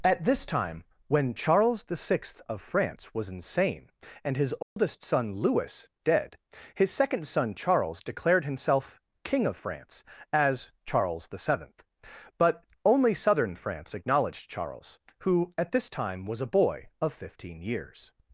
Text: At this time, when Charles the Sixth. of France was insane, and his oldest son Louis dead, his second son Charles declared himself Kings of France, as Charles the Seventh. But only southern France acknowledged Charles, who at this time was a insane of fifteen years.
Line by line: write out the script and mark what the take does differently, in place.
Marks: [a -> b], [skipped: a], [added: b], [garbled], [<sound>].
At this time, when Charles the Sixth. of France was insane, and his oldest [dropout] son Louis dead, his second son Charles declared himself [Kings -> King] of France, as Charles the Seventh. But only southern France acknowledged Charles, who at this time was a [insane -> boy] of fifteen years.